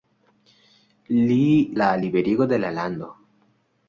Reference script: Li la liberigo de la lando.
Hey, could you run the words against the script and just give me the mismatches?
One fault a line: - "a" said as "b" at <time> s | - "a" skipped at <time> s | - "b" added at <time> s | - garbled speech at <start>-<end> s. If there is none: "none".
none